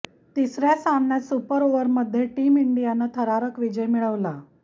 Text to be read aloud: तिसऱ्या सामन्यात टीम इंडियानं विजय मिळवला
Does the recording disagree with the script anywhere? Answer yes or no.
yes